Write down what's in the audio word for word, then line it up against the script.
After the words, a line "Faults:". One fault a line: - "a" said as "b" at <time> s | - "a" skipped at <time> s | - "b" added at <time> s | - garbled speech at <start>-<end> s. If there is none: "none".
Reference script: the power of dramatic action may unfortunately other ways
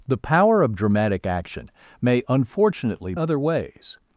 the power of dramatic action may unfortunately other ways
Faults:
none